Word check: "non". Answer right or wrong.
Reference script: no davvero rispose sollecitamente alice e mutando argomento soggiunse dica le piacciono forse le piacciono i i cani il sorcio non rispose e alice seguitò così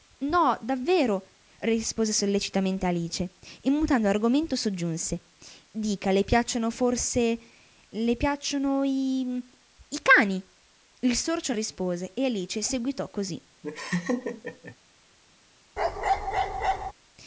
wrong